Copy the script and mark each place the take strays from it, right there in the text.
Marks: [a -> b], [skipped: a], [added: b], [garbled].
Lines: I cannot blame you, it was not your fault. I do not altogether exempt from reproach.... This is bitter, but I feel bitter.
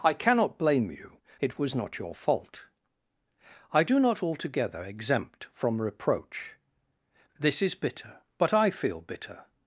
I cannot blame you, it was not your fault. I do not altogether exempt from reproach.... This is bitter, but I feel bitter.